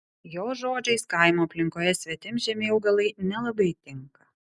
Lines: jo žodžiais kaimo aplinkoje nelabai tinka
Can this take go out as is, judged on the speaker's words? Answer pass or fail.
fail